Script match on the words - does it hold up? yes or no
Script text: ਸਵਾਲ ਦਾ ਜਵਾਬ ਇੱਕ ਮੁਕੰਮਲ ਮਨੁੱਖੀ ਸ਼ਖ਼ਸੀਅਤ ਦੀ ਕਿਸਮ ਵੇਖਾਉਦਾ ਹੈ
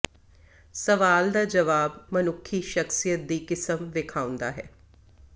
no